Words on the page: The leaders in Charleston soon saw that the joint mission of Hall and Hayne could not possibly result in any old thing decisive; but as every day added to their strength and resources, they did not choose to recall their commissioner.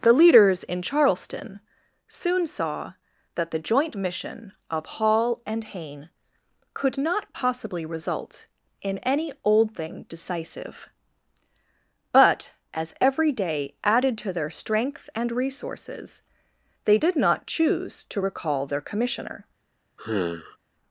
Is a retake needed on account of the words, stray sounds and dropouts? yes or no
yes